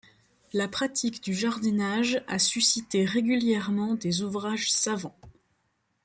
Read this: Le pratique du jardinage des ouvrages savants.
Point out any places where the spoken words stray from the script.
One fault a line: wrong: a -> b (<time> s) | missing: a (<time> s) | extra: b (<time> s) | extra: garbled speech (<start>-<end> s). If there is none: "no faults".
wrong: Le -> La (0.5 s)
extra: a suscité régulièrement (2.3 s)